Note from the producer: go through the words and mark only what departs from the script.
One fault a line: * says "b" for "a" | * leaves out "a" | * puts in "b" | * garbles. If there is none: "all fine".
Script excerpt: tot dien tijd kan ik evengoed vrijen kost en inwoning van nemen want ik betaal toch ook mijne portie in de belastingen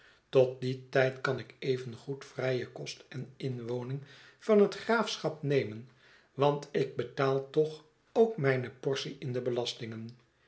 * puts in "het graafschap"